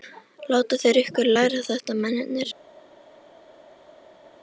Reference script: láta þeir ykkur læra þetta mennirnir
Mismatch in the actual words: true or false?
false